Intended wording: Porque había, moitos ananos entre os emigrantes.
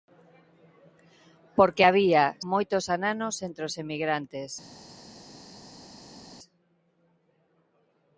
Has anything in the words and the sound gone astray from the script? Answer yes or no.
no